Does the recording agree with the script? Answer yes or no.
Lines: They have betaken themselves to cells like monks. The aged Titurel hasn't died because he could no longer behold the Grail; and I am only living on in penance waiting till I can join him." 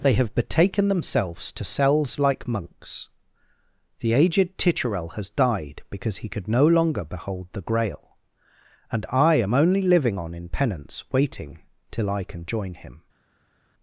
no